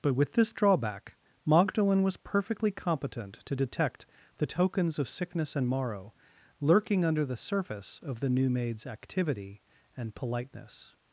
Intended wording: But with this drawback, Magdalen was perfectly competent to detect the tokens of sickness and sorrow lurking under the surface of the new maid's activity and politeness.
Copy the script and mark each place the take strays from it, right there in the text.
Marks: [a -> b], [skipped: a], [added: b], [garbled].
But with this drawback, Magdalen was perfectly competent to detect the tokens of sickness and [sorrow -> morrow] lurking under the surface of the new maid's activity and politeness.